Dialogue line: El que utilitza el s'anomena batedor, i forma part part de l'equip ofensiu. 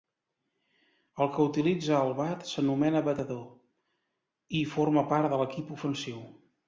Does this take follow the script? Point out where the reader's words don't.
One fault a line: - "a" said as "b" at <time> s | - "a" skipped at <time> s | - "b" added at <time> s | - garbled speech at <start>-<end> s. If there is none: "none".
- "bat" added at 2.2 s
- "part" skipped at 5.3 s